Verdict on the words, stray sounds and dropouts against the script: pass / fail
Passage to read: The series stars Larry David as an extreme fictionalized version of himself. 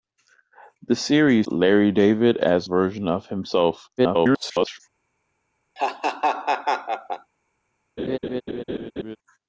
fail